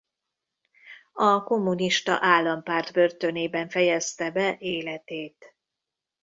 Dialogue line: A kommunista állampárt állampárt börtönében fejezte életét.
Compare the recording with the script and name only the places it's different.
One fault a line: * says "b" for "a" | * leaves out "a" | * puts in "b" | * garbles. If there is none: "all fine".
* leaves out "állampárt"
* puts in "be"